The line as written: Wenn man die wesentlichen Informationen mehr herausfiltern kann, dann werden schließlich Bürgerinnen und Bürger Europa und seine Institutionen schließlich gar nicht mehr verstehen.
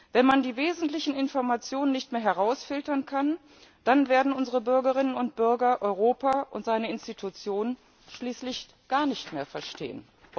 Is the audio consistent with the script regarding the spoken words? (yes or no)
no